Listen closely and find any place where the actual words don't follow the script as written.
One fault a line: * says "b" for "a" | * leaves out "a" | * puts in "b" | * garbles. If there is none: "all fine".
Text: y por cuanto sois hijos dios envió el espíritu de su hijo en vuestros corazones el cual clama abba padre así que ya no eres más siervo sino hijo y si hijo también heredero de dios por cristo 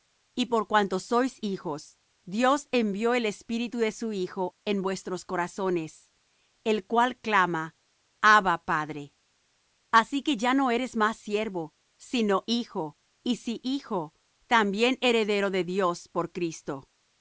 all fine